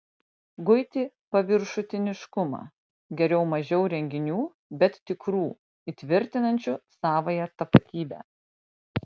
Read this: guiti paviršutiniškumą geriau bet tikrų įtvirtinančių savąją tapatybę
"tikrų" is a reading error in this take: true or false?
false